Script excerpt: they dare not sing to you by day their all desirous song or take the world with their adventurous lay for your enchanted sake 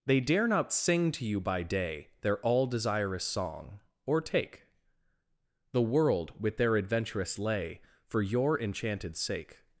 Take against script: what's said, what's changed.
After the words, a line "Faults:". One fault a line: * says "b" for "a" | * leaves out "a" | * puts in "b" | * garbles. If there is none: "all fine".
they dare not sing to you by day their all desirous song or take the world with their adventurous lay for your enchanted sake
Faults:
all fine